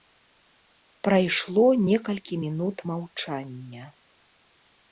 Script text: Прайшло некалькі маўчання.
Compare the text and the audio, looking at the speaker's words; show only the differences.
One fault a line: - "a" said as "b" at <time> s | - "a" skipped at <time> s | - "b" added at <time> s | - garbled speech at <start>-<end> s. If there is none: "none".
- "мінут" added at 2.4 s